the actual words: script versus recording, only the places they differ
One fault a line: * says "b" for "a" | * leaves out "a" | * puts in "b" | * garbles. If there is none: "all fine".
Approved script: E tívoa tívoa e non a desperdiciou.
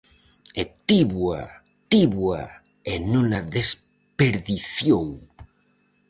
all fine